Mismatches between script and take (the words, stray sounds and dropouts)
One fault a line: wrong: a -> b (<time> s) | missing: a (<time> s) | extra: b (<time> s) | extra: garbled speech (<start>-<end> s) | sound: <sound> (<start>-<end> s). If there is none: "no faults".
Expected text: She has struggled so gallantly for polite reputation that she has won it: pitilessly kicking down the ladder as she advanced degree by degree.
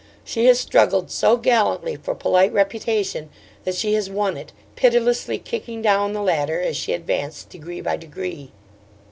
no faults